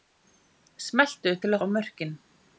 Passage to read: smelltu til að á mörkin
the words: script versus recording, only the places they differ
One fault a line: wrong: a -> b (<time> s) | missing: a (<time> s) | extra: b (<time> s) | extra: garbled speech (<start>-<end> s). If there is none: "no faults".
no faults